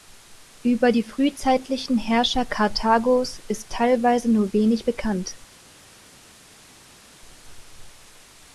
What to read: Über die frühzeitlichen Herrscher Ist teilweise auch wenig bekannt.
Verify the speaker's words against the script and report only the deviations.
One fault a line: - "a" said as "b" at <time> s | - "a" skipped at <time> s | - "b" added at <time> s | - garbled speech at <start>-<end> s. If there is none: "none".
- "Karthagos" added at 2.4 s
- "auch" said as "nur" at 4.3 s